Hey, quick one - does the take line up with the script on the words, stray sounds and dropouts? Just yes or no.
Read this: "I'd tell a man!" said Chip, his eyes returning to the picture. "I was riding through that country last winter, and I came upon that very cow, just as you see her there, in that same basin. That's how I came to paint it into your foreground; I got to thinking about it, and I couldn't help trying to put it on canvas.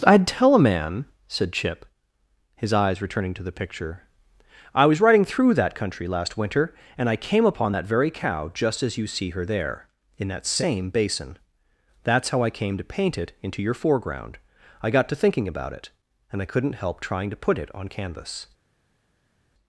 yes